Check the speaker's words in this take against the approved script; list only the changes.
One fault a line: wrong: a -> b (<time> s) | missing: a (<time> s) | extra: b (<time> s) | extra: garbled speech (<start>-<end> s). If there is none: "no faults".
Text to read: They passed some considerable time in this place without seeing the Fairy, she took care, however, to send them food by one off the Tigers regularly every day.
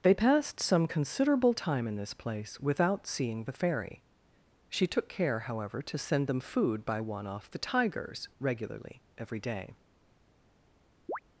no faults